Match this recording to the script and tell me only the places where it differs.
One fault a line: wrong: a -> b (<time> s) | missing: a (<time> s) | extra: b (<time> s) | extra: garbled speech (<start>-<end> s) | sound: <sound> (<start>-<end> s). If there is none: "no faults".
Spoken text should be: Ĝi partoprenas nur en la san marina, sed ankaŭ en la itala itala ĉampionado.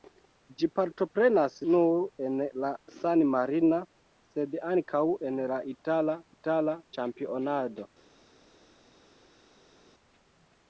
no faults